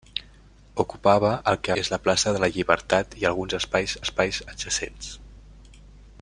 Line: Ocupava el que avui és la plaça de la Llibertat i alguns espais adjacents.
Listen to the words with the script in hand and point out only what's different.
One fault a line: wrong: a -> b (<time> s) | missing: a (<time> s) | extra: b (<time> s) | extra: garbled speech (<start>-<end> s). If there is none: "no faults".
missing: avui (1.8 s)
extra: espais (4.0 s)